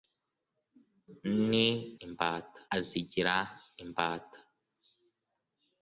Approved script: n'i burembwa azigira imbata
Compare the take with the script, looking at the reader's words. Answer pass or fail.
fail